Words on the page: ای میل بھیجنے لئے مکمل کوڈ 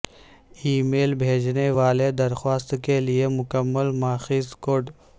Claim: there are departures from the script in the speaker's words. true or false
true